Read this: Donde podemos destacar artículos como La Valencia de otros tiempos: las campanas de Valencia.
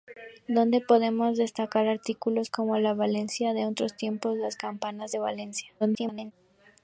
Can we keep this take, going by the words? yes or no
no